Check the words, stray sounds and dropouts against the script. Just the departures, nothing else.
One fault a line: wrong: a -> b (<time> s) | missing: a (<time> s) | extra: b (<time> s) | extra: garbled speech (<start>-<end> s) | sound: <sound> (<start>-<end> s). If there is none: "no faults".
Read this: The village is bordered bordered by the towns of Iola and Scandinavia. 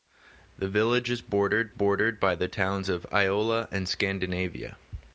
no faults